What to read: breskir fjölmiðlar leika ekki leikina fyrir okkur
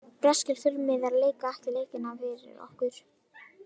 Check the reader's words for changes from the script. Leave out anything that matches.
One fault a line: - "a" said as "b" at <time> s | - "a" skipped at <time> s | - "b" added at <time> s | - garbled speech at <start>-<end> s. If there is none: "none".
none